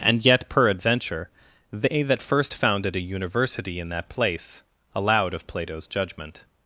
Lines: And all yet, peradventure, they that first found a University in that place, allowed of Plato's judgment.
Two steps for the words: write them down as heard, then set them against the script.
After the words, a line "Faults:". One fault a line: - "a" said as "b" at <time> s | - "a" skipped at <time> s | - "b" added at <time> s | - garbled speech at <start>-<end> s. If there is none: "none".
And yet, peradventure, they that first founded a University in that place, allowed of Plato's judgment.
Faults:
- "all" skipped at 0.2 s
- "found" said as "founded" at 2.5 s